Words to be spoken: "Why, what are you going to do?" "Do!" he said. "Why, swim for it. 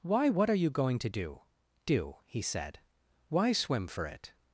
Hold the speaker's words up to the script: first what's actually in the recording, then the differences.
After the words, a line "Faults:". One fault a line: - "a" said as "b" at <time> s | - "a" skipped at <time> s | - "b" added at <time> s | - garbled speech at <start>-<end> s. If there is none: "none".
"Why, what are you going to do?" "Do!" he said. "Why, swim for it.
Faults:
none